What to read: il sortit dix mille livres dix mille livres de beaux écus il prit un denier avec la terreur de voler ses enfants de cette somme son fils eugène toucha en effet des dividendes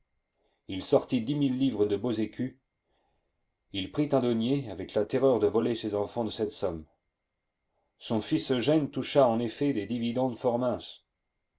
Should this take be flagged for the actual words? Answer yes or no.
yes